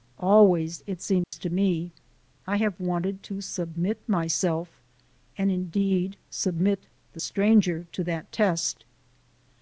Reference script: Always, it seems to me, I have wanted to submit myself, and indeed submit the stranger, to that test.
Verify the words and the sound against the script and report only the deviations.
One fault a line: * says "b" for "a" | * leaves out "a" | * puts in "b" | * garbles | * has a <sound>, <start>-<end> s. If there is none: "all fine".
* has a dropout, 1.2-1.3 s